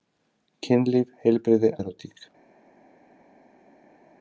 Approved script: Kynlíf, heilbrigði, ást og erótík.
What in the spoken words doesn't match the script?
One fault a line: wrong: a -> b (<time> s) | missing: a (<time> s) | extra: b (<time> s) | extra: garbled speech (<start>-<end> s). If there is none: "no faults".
missing: ást og (1.7 s)